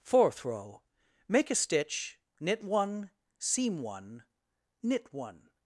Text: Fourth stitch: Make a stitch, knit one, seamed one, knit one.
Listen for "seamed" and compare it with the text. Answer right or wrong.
wrong